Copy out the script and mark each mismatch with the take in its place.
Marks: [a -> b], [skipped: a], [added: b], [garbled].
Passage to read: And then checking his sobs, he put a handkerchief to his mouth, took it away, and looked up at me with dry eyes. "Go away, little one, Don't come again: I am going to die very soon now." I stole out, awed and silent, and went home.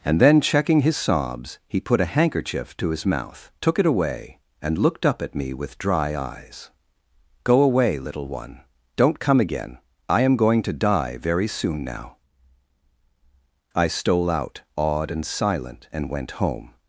And then checking his sobs, he put a handkerchief to his mouth, took it away, and looked up at me with dry eyes. "Go away, little one, Don't come again: I am going to die very soon now." I stole out, awed and silent, and went home.